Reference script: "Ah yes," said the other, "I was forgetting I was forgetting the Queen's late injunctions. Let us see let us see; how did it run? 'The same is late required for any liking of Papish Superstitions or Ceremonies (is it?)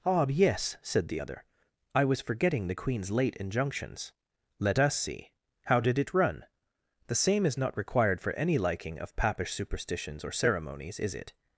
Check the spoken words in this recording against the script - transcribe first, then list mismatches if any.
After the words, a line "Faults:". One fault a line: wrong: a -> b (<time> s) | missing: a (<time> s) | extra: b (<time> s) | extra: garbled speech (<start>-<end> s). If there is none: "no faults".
"Ah yes," said the other, "I was forgetting the Queen's late injunctions. Let us see; how did it run? 'The same is not required for any liking of Papish Superstitions or Ceremonies (is it?)
Faults:
missing: I was forgetting (2.7 s)
missing: let us see (5.3 s)
wrong: late -> not (7.6 s)